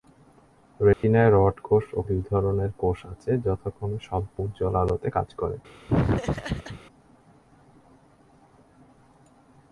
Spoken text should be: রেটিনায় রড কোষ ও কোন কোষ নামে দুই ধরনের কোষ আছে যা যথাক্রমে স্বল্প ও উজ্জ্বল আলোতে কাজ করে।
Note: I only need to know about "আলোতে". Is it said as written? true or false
true